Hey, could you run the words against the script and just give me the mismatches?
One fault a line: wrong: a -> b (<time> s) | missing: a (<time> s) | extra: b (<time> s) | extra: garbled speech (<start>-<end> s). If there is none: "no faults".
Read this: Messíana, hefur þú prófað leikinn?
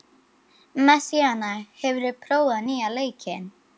extra: nýja (2.7 s)